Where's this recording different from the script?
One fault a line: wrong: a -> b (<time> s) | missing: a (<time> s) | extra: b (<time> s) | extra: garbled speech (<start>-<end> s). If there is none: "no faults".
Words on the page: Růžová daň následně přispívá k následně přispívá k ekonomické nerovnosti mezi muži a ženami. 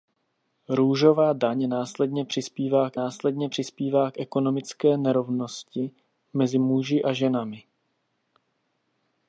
no faults